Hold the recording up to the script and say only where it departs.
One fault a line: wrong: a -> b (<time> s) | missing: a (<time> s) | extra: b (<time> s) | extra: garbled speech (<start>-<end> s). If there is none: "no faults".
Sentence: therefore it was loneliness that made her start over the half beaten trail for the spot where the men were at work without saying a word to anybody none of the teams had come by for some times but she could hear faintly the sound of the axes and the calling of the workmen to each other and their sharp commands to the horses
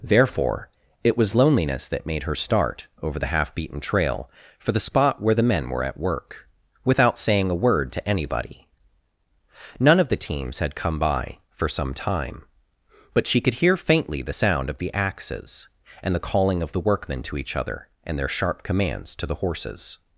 wrong: times -> time (11.9 s)